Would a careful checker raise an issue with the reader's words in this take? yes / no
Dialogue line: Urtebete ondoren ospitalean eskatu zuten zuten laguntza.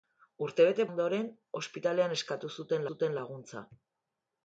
no